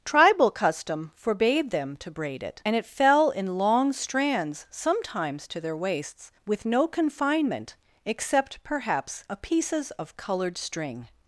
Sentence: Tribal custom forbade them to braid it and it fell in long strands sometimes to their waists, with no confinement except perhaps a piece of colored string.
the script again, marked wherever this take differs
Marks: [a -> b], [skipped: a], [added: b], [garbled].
Tribal custom forbade them to braid it and it fell in long strands sometimes to their waists, with no confinement except perhaps a [piece -> pieces] of colored string.